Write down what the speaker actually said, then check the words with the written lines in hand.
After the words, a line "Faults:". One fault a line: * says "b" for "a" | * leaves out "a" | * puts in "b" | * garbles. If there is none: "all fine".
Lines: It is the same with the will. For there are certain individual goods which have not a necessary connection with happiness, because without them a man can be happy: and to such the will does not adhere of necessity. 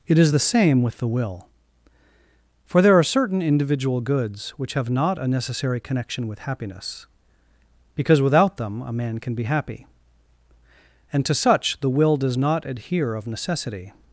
It is the same with the will. For there are certain individual goods which have not a necessary connection with happiness, because without them a man can be happy: and to such the will does not adhere of necessity.
Faults:
all fine